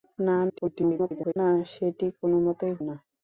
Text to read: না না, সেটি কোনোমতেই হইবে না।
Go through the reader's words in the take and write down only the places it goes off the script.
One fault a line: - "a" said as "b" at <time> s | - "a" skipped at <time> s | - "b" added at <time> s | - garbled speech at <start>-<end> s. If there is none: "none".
- garbled speech at 0.5-1.4 s
- "হইবে" skipped at 2.7 s